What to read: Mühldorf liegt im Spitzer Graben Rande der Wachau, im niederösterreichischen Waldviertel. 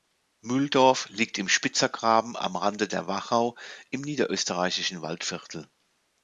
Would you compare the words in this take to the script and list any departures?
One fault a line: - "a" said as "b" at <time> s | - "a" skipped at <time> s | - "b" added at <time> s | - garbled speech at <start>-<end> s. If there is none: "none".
- "am" added at 2.4 s